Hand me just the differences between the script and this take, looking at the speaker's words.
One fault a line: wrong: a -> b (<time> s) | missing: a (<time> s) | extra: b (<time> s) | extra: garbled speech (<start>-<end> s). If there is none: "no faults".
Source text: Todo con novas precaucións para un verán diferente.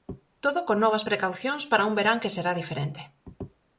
extra: que será (2.2 s)